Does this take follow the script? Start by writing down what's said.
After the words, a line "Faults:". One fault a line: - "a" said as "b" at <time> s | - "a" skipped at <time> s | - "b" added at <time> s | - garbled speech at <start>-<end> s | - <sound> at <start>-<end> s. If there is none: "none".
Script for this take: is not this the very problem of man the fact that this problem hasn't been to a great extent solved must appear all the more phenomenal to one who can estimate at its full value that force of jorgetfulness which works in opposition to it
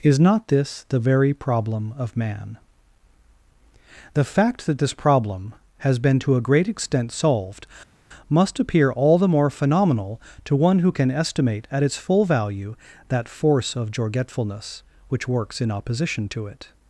is not this the very problem of man the fact that this problem has been to a great extent solved must appear all the more phenomenal to one who can estimate at its full value that force of jorgetfulness which works in opposition to it
Faults:
- "hasn't" said as "has" at 5.8 s